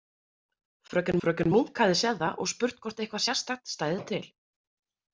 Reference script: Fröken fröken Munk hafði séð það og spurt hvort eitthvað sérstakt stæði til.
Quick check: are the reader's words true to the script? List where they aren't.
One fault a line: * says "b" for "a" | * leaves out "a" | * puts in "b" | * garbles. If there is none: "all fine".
all fine